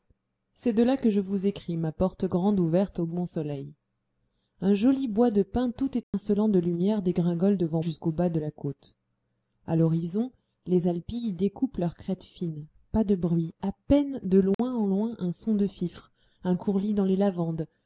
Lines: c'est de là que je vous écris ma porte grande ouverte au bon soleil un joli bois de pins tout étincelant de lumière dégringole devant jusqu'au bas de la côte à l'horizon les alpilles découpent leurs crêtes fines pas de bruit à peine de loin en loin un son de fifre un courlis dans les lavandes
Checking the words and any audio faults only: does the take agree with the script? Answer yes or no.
no